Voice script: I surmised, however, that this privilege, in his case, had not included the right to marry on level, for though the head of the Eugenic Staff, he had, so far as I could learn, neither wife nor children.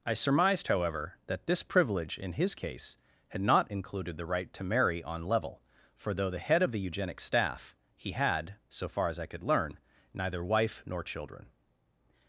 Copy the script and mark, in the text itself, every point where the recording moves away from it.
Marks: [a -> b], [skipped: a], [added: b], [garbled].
I surmised, however, that this privilege, in his case, had not included the right to marry on level, for though the head of the Eugenic Staff, he had, so far as I could learn, neither wife nor children.